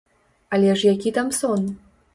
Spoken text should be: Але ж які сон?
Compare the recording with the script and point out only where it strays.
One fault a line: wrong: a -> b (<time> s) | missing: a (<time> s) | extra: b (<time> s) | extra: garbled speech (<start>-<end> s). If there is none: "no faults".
extra: там (1.1 s)